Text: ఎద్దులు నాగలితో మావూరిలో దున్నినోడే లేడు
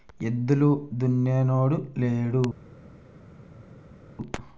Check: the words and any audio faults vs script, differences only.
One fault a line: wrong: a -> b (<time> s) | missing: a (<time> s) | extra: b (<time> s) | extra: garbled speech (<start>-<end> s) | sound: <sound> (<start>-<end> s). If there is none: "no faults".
missing: నాగలితో మావూరిలో (0.7 s)